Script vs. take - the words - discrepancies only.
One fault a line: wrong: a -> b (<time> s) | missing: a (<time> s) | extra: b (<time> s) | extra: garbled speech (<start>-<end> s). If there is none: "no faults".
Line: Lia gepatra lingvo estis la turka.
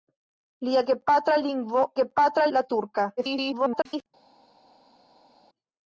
wrong: estis -> gepatra (2.0 s)
extra: garbled speech (3.2-4.1 s)